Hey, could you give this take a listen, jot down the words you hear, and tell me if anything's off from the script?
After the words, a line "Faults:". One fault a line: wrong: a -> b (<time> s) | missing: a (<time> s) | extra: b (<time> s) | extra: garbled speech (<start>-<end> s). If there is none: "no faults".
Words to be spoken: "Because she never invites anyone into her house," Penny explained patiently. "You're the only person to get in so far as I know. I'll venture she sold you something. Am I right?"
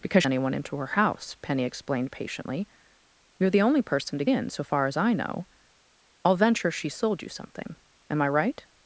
"Because anyone into her house," Penny explained patiently. "You're the only person to in so far as I know. I'll venture she sold you something. Am I right?"
Faults:
missing: she never invites (0.2 s)
missing: get (4.2 s)